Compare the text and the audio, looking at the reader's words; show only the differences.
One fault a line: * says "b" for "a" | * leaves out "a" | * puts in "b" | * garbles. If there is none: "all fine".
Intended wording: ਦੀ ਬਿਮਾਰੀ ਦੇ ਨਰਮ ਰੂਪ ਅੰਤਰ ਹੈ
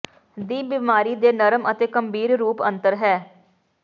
* puts in "ਅਤੇ ਗੰਭੀਰ"